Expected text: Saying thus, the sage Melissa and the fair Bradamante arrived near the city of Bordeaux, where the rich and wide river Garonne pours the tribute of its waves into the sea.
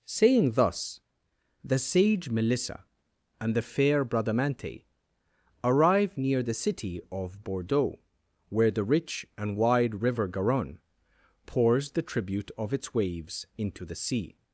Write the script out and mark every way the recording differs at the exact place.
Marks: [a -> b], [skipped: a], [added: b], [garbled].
Saying thus, the sage Melissa and the fair Bradamante [arrived -> arrive] near the city of Bordeaux, where the rich and wide river Garonne pours the tribute of its waves into the sea.